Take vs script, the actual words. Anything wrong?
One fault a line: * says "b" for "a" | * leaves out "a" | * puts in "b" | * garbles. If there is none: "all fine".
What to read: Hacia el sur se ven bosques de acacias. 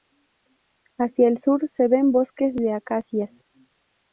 all fine